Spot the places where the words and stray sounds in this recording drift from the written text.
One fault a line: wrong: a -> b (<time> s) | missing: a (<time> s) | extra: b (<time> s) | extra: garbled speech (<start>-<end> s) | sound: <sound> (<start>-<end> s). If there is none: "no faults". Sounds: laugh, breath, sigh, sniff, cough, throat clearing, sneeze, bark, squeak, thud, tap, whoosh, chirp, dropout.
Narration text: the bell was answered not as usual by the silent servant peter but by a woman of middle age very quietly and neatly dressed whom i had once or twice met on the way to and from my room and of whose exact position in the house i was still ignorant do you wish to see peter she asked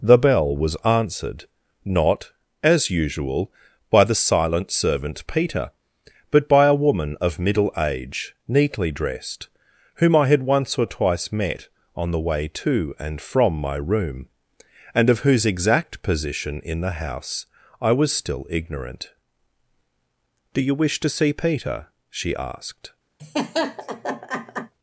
missing: very quietly and (8.3 s)
sound: laugh (23.2-24.7 s)